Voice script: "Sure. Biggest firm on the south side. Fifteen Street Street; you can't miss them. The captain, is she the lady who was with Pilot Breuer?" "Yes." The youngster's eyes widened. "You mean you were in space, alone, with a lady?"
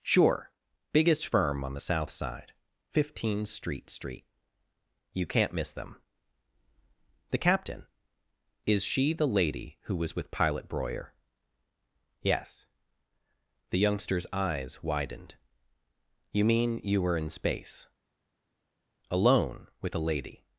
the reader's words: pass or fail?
pass